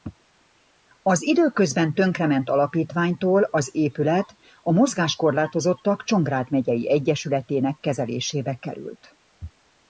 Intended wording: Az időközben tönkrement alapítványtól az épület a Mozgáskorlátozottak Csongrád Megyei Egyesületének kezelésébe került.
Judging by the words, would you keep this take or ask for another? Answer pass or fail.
pass